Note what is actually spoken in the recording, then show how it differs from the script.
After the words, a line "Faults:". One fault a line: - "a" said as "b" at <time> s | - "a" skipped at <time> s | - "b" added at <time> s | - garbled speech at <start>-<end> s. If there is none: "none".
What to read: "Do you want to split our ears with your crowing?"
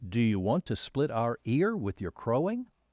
"Do you want to split our ear with your crowing?"
Faults:
- "ears" said as "ear" at 1.4 s